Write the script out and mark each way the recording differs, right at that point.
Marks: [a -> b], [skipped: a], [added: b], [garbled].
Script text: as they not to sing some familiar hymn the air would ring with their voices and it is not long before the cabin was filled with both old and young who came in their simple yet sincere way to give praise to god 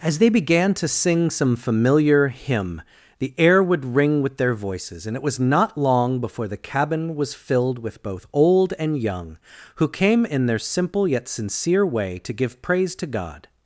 as they [not -> began] to sing some familiar hymn the air would ring with their voices and it [is -> was] not long before the cabin was filled with both old and young who came in their simple yet sincere way to give praise to god